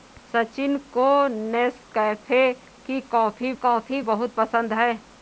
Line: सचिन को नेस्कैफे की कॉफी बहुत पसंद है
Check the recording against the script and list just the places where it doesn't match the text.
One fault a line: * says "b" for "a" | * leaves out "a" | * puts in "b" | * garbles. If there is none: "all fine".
* puts in "कॉफी"